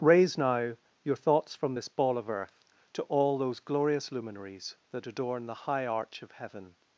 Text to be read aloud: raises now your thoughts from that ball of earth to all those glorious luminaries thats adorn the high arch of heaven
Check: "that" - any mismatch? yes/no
yes